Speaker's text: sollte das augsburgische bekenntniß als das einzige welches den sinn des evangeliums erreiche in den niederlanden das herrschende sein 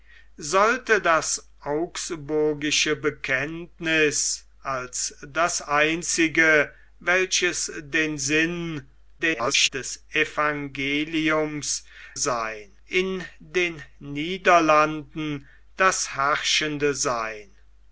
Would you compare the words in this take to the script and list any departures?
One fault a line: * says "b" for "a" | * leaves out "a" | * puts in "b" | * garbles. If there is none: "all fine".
* garbles
* says "sein" for "erreiche"